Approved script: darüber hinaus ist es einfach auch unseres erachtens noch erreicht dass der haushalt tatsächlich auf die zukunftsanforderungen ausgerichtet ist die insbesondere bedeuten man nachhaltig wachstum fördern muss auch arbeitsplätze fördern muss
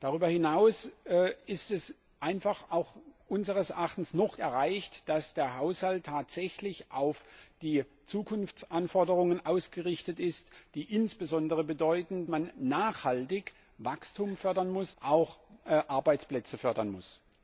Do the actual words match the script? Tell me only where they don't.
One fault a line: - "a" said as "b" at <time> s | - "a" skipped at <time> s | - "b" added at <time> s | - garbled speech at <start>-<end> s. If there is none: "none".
none